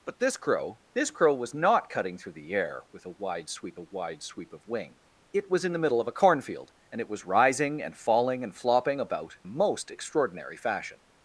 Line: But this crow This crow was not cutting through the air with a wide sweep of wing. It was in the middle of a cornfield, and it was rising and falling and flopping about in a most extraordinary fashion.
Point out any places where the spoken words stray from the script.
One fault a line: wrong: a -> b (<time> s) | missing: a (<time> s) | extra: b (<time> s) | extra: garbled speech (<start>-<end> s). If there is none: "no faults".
extra: a wide sweep (3.8 s)
missing: in (9.4 s)